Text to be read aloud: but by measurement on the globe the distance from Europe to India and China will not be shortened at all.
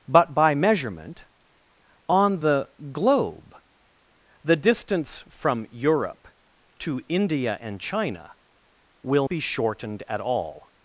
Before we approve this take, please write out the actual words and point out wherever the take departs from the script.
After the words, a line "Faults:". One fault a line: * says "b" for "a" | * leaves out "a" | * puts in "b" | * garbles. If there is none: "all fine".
but by measurement on the globe the distance from Europe to India and China will be shortened at all.
Faults:
* leaves out "not"